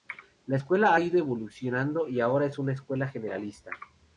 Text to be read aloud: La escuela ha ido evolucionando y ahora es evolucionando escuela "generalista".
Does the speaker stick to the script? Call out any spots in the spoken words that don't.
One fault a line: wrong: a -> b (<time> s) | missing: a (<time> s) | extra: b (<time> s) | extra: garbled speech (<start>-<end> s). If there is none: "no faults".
wrong: evolucionando -> una (2.6 s)